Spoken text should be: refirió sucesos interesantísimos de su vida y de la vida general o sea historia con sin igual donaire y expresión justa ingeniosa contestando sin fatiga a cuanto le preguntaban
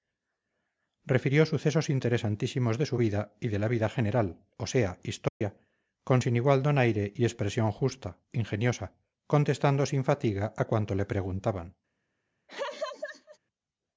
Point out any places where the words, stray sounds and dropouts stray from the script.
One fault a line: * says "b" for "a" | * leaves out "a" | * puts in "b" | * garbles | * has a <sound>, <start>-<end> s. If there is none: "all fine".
* has a dropout, 5.3-5.4 s
* has a laugh, 12.5-13.4 s